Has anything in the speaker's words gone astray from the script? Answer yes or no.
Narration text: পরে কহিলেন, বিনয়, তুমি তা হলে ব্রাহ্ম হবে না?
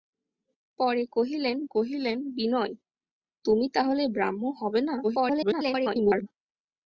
yes